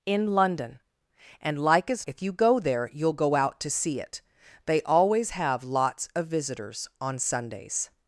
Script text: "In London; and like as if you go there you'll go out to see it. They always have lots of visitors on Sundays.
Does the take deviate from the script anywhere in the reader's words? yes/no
no